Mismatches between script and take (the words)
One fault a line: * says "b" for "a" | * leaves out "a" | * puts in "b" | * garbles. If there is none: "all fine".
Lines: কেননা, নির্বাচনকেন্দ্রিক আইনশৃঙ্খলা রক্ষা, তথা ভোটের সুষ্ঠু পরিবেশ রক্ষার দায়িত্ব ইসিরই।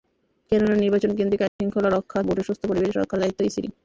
* leaves out "তথা"